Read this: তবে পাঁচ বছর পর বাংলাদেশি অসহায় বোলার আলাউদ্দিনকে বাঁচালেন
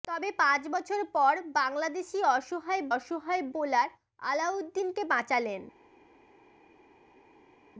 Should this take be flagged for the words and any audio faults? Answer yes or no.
yes